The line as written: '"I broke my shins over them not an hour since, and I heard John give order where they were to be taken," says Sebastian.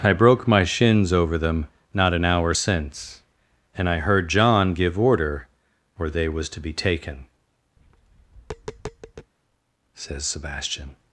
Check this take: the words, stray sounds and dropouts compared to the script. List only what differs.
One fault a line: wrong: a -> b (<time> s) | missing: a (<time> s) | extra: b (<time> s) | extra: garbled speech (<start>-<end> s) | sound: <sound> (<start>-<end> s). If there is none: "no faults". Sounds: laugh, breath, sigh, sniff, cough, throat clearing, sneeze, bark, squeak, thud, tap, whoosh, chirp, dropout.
wrong: were -> was (6.3 s)
sound: tap (7.8-9.3 s)